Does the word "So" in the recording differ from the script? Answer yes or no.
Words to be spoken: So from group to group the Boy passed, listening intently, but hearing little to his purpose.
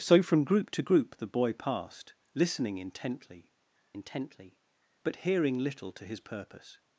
no